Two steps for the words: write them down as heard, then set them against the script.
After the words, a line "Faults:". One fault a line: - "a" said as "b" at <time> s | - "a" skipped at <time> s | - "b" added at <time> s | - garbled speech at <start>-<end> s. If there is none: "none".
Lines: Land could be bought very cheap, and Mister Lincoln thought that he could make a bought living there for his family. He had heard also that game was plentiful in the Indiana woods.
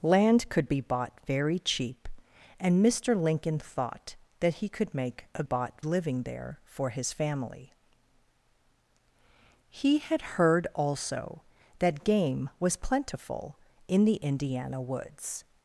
Land could be bought very cheap, and Mister Lincoln thought that he could make a bought living there for his family. He had heard also that game was plentiful in the Indiana woods.
Faults:
none